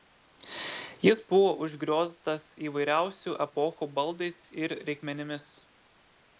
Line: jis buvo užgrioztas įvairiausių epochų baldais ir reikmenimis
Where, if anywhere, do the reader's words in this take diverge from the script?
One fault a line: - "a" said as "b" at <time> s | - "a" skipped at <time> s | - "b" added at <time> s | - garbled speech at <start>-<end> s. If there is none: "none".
none